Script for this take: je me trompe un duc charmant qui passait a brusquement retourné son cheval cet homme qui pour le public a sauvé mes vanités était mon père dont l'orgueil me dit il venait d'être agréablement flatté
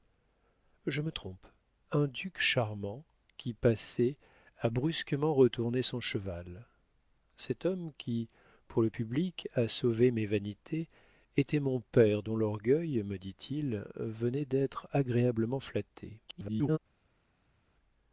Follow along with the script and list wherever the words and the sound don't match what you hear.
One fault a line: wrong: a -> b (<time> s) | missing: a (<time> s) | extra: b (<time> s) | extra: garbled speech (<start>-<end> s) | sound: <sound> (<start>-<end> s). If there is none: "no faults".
extra: garbled speech (16.3-16.8 s)